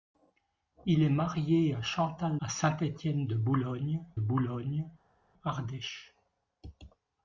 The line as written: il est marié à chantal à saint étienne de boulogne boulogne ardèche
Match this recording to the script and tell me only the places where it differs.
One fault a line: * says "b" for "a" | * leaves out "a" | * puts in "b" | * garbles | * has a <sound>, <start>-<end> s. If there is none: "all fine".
all fine